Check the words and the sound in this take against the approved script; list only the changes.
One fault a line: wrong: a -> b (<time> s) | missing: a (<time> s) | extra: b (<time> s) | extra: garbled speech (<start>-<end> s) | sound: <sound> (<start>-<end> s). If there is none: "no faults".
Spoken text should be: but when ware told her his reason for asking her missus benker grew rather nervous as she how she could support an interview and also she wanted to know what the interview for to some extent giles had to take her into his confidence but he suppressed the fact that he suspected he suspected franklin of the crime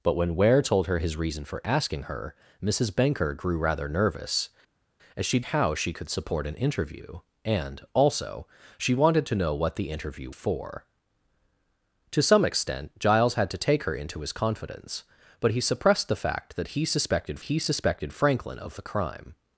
no faults